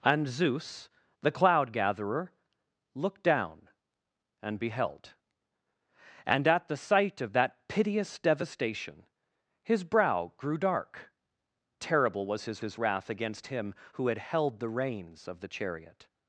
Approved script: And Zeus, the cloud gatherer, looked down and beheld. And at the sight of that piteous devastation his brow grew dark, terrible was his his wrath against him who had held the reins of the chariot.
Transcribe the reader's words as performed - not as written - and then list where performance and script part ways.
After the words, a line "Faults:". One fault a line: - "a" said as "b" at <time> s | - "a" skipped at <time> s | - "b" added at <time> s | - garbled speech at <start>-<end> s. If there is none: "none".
And Zeus, the cloud gatherer, looked down and beheld. And at the sight of that piteous devastation his brow grew dark, terrible was his his wrath against him who had held the reins of the chariot.
Faults:
none